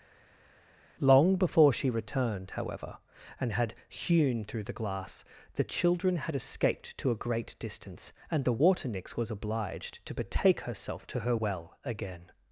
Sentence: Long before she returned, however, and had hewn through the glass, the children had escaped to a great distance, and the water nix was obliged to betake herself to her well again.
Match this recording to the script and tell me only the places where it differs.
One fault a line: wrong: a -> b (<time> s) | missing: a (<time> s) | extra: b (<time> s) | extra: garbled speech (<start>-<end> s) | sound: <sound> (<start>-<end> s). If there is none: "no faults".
no faults